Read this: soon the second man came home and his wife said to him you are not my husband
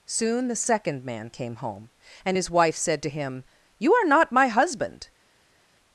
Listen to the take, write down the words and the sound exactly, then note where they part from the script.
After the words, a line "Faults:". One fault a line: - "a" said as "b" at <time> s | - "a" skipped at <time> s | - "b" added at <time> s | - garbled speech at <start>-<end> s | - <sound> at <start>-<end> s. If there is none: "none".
soon the second man came home and his wife said to him you are not my husband
Faults:
none